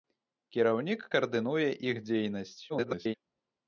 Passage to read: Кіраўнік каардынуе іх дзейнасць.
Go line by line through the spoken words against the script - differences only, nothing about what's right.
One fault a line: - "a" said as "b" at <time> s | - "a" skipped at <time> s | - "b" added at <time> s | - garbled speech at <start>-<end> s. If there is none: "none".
- garbled speech at 2.7-3.1 s